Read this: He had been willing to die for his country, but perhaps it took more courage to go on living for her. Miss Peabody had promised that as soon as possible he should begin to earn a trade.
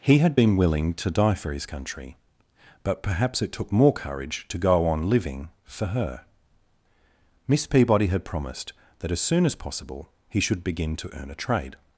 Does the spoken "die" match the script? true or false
true